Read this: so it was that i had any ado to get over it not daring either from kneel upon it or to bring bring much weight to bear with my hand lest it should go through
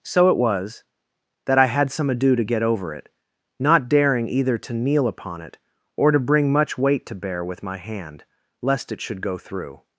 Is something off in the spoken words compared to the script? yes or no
yes